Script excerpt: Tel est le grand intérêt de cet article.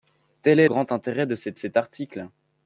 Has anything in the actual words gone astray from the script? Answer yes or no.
yes